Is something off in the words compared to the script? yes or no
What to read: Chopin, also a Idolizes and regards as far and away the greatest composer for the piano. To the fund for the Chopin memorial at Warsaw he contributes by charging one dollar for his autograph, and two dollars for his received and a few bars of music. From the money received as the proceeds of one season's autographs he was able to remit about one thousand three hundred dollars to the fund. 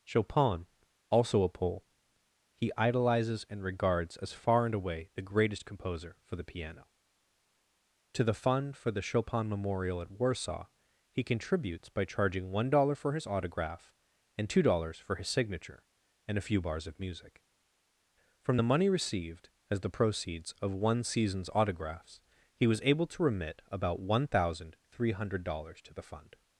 yes